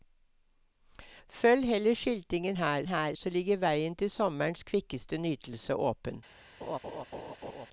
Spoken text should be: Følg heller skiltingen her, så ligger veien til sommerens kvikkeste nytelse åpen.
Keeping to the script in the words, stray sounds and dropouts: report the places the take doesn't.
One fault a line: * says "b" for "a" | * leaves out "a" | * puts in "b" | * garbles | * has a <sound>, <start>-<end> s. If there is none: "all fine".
* puts in "her"
* has a laugh, 6.6-7.7 s